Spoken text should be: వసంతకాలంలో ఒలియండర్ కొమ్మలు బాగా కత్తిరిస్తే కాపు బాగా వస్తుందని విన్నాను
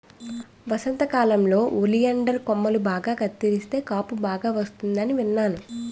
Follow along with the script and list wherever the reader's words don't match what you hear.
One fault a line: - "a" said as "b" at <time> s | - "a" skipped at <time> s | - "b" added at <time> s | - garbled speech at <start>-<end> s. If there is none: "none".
none